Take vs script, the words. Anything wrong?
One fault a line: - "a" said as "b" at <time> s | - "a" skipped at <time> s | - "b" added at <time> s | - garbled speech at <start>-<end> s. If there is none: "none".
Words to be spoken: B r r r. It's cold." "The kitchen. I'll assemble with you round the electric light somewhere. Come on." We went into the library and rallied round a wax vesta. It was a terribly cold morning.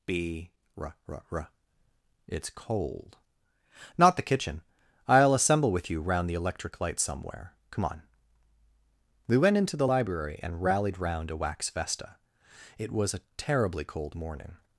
- "Not" added at 4.0 s